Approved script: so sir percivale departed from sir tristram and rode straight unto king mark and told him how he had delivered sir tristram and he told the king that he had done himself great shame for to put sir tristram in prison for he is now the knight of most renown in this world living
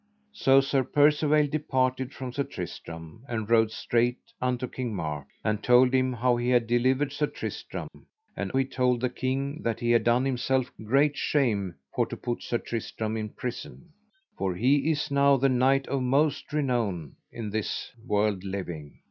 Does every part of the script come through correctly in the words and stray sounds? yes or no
no